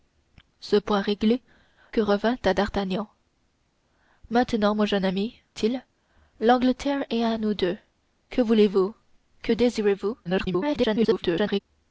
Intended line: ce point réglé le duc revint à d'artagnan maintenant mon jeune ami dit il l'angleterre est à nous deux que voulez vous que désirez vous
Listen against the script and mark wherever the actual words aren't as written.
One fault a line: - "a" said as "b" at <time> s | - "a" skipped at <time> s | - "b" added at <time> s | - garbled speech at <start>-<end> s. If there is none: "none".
- "le duc" skipped at 1.4 s
- "dit" skipped at 5.4 s
- garbled speech at 10.3-11.6 s